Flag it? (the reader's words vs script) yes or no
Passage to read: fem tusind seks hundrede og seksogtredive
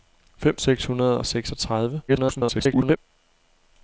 yes